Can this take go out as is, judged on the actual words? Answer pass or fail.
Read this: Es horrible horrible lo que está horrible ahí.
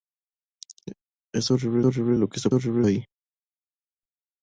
pass